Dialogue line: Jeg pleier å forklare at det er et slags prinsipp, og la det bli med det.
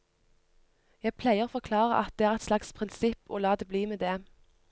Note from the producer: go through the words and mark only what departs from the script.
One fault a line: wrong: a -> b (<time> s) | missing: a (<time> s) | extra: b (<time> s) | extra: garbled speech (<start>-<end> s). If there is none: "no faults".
no faults